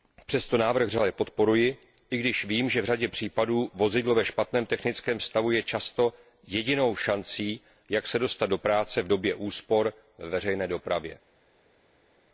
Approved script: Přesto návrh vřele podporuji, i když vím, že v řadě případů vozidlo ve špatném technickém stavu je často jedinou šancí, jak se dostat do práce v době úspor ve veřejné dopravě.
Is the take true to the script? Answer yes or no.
yes